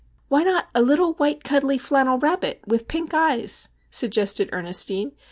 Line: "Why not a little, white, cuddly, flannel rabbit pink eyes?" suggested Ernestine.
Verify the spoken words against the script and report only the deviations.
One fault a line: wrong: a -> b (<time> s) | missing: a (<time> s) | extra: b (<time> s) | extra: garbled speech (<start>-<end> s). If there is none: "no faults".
extra: with (2.7 s)